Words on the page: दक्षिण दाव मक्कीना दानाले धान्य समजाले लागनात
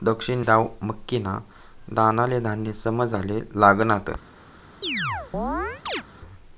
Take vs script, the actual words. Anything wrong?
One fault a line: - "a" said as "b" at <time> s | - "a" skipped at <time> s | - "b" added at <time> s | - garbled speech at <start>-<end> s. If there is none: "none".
none